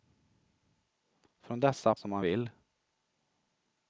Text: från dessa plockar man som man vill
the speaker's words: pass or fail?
fail